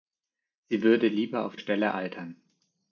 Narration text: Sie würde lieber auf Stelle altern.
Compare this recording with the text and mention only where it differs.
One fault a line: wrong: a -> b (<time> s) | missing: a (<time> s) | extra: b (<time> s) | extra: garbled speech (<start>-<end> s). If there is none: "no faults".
no faults